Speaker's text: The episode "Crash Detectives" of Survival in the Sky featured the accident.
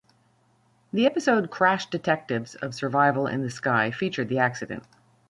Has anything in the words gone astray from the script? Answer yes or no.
no